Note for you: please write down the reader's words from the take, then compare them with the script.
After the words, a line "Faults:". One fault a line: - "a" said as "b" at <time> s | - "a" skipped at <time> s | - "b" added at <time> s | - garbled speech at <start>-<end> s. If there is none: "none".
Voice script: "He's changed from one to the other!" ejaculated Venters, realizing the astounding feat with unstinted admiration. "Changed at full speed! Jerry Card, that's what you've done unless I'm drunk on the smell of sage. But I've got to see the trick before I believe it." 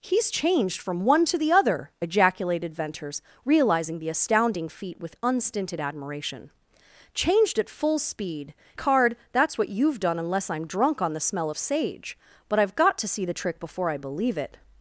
"He's changed from one to the other!" ejaculated Venters, realizing the astounding feat with unstinted admiration. "Changed at full speed! Card, that's what you've done unless I'm drunk on the smell of sage. But I've got to see the trick before I believe it."
Faults:
- "Jerry" skipped at 8.6 s